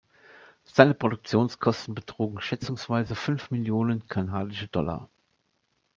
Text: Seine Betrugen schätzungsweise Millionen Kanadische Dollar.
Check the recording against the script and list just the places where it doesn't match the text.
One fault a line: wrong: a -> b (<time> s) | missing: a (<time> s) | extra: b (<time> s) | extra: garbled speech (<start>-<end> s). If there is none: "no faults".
extra: Produktionskosten (0.9 s)
extra: fünf (3.1 s)